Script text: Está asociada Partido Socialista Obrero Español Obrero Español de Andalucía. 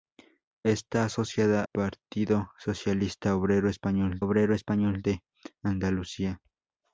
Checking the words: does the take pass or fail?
pass